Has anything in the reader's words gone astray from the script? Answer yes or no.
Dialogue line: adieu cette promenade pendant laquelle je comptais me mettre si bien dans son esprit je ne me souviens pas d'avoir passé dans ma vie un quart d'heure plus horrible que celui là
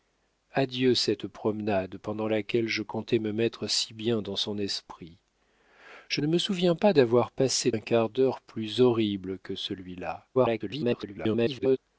yes